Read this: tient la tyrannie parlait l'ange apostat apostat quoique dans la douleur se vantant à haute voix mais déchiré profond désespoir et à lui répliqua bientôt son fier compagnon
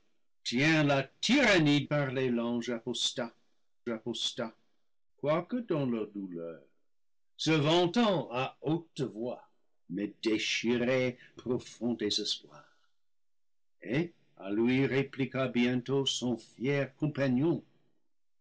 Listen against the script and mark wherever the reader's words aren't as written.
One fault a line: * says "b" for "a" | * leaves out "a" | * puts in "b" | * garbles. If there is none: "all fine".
all fine